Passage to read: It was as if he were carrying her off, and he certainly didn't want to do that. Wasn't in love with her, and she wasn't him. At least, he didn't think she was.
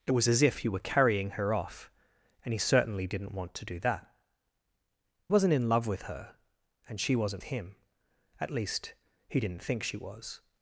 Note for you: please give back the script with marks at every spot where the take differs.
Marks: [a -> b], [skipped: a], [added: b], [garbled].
It was as if he were carrying her off, and he certainly didn't want to do that. Wasn't in love with her, and she wasn't him. At least, he didn't think she was.